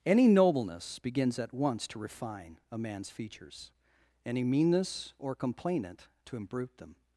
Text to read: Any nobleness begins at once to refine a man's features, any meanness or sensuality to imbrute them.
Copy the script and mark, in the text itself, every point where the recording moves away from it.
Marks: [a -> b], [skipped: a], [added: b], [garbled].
Any nobleness begins at once to refine a man's features, any meanness or [sensuality -> complainant] to imbrute them.